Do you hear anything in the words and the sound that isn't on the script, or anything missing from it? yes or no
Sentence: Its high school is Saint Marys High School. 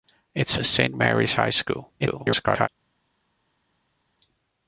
yes